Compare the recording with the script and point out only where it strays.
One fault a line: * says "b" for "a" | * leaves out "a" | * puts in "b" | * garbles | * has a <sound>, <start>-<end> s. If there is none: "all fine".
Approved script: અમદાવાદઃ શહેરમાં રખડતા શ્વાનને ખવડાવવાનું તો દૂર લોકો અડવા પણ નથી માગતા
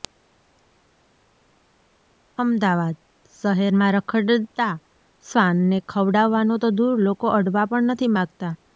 all fine